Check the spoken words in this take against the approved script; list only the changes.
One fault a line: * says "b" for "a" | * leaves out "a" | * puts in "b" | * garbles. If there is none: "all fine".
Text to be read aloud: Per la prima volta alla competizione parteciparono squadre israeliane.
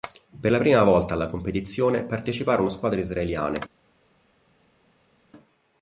all fine